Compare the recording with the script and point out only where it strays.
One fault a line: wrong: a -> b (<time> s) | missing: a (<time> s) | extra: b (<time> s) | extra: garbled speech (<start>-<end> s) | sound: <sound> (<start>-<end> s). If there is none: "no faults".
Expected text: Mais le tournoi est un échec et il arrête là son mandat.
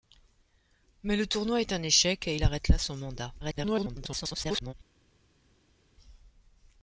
extra: garbled speech (3.4-4.7 s)